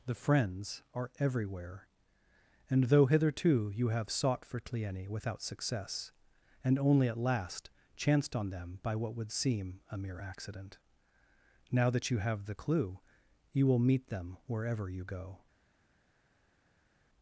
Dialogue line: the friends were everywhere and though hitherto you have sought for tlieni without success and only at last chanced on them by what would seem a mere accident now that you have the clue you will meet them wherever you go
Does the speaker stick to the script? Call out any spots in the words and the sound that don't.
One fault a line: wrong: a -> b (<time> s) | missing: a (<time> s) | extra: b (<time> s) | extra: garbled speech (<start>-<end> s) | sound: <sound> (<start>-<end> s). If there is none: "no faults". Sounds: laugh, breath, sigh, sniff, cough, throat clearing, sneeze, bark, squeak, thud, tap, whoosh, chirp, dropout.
wrong: were -> are (0.9 s)